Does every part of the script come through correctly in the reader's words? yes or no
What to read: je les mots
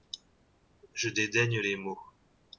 no